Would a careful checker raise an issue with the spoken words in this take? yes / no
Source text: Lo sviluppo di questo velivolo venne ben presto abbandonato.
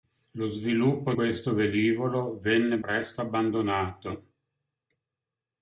yes